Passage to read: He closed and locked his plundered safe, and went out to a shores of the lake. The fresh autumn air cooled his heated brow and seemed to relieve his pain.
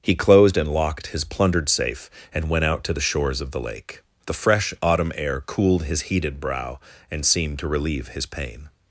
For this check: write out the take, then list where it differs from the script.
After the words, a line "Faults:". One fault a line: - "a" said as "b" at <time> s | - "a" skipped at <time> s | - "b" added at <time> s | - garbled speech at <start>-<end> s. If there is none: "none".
He closed and locked his plundered safe, and went out to the shores of the lake. The fresh autumn air cooled his heated brow and seemed to relieve his pain.
Faults:
- "a" said as "the" at 2.9 s